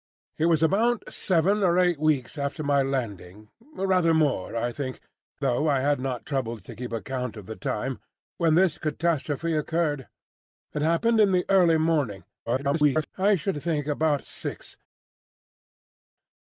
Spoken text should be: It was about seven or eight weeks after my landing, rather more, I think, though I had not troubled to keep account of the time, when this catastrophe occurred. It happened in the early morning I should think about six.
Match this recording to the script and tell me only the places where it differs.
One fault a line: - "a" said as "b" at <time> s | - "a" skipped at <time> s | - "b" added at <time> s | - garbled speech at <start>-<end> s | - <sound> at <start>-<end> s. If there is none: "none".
- garbled speech at 12.5-13.1 s